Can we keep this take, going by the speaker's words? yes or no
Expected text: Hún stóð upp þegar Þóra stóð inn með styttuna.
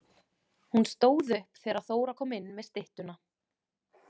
no